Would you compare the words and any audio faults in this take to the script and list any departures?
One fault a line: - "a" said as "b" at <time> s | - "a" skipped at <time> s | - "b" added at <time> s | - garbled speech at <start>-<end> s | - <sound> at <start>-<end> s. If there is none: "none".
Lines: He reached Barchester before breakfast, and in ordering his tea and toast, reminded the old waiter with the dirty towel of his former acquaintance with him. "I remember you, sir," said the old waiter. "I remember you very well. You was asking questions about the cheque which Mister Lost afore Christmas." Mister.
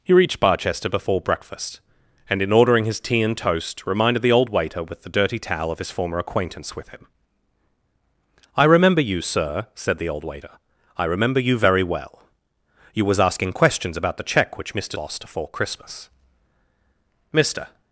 none